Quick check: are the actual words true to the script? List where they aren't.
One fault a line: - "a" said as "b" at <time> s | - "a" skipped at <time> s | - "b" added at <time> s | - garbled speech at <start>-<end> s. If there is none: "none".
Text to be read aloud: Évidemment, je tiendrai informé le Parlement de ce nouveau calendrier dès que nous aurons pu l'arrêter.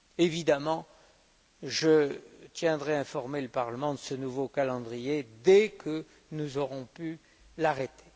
none